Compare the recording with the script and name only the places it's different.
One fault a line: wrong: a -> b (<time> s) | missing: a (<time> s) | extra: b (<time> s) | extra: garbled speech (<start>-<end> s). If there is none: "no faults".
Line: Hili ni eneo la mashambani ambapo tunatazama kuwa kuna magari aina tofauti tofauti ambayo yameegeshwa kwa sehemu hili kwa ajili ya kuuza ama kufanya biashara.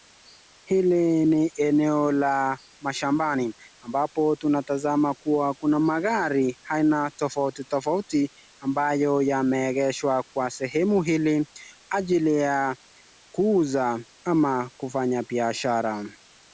missing: kwa (11.5 s)